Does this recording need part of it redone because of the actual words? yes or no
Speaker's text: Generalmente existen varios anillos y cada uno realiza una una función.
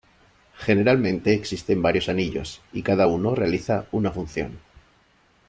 yes